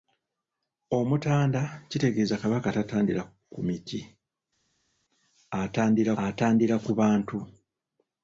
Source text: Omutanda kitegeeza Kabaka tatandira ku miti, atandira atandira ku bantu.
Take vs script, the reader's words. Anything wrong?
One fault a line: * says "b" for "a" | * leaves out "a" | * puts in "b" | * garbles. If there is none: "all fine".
all fine